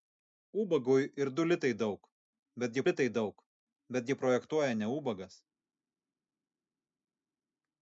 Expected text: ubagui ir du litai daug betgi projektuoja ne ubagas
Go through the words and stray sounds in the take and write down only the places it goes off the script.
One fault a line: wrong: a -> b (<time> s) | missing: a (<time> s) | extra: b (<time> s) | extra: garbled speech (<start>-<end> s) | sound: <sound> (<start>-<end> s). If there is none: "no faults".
extra: litai daug betgi (2.9 s)